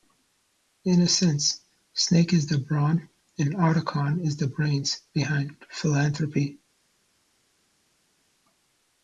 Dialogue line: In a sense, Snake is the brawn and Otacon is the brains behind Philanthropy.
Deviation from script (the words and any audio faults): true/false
false